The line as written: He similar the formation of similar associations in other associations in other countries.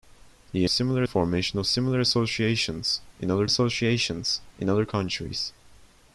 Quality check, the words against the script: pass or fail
pass